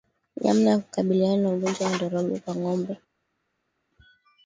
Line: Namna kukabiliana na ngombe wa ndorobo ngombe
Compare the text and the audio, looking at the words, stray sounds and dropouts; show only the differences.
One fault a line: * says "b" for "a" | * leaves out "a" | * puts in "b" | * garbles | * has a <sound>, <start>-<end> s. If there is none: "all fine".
* puts in "ya"
* says "ugonjwa" for "ngombe"
* puts in "kwa"